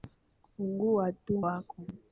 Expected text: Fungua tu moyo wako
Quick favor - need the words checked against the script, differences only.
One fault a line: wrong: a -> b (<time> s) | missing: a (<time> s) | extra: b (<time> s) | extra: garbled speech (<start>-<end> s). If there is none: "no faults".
missing: moyo (1.4 s)